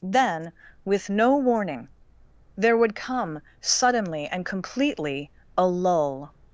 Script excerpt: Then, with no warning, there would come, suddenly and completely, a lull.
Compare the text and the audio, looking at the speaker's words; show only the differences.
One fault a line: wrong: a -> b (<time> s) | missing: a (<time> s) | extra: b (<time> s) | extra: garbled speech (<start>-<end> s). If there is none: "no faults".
no faults